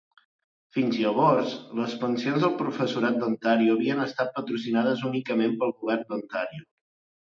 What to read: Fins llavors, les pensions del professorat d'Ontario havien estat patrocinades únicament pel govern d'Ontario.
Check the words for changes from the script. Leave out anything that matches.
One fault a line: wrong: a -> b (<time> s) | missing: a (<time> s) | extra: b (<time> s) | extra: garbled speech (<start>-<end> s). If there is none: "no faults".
no faults